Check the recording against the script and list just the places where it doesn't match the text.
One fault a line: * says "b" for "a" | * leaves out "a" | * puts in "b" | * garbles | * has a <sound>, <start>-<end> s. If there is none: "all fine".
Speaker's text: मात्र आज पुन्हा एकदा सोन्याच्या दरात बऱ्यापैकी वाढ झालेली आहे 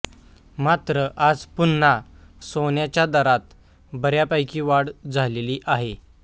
* leaves out "एकदा"